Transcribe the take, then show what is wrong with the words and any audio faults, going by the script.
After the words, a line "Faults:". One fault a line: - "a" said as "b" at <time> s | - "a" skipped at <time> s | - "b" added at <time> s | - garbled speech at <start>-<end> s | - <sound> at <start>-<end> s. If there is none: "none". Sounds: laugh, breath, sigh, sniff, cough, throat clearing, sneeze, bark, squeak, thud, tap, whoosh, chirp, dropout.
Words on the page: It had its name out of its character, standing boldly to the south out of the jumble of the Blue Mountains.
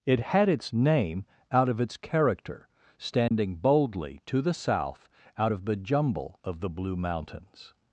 It had its name out of its character, standing boldly to the south out of the jumble of the Blue Mountains.
Faults:
- dropout at 3.3-3.3 s